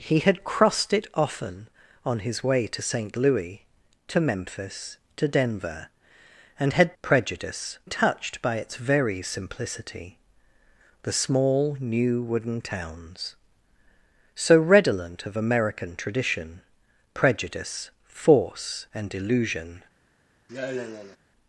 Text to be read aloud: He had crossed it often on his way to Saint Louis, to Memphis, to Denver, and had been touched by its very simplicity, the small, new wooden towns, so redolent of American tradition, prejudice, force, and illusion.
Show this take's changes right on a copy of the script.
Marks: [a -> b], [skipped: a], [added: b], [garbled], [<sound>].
He had crossed it often on his way to Saint Louis, to Memphis, to Denver, and had [been -> prejudice] touched by its very simplicity, the small, new wooden towns, so redolent of American tradition, prejudice, force, and illusion. [sigh]